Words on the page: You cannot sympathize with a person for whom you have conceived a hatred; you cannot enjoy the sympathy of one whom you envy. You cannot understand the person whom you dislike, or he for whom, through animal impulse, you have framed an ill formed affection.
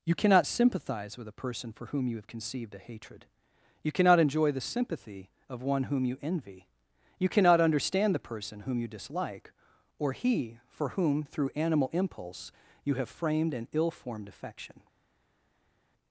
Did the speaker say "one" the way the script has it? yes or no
yes